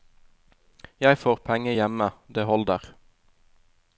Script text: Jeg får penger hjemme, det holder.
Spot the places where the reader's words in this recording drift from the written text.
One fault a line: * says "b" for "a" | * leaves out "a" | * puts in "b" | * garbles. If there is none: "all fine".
all fine